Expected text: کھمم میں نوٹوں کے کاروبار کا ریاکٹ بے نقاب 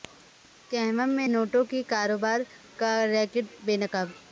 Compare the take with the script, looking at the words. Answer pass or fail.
pass